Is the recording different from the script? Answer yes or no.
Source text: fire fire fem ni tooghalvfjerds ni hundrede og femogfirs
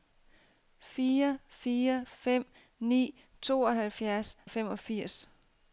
yes